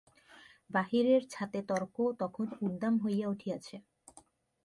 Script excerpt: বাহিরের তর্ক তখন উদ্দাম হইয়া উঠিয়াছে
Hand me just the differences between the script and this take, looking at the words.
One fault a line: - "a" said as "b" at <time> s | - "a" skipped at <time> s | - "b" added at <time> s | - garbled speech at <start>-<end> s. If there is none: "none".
- "ছাতে" added at 1.3 s